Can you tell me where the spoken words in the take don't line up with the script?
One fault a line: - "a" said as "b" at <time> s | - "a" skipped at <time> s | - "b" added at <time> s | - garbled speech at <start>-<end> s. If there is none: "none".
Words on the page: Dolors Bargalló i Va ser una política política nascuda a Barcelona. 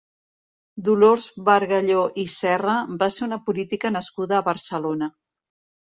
- "Serra" added at 2.4 s
- "política" skipped at 4.0 s